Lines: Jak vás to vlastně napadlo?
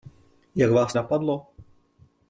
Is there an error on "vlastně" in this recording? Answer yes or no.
yes